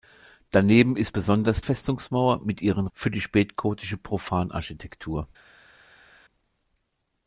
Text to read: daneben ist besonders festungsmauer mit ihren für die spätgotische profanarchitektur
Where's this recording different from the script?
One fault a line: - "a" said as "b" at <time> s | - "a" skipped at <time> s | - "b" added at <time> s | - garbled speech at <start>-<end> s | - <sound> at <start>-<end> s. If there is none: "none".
none